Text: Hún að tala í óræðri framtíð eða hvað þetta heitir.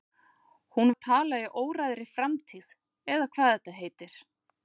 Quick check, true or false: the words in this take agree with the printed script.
true